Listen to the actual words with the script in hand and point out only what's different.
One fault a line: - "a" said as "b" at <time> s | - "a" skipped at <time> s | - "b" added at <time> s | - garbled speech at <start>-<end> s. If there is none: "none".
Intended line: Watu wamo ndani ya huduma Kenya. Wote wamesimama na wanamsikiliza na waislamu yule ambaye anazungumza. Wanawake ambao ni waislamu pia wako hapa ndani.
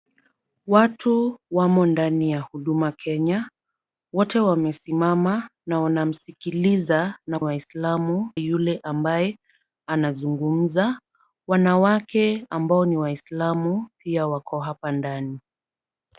none